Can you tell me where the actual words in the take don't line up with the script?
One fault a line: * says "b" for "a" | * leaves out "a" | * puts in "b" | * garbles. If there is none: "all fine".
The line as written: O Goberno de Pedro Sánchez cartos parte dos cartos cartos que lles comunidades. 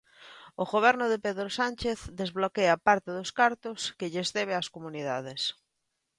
* says "desbloquea" for "cartos"
* leaves out "cartos"
* puts in "debe ás"